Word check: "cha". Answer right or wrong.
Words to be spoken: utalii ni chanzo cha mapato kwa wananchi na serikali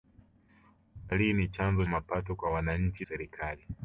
wrong